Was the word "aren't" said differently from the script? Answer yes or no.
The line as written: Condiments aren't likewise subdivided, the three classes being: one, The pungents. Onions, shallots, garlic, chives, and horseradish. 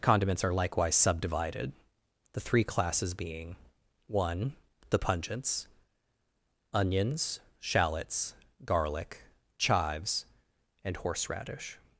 yes